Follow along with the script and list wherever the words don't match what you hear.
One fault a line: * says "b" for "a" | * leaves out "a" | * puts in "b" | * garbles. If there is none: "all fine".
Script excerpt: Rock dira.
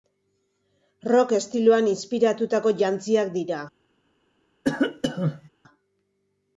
* puts in "estiloan inspiratutako jantziak"